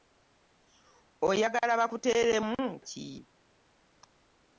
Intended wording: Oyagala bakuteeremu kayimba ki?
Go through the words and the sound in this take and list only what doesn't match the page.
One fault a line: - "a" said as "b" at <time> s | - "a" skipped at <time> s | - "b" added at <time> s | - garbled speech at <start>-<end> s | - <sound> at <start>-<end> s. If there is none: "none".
- "kayimba" skipped at 2.6 s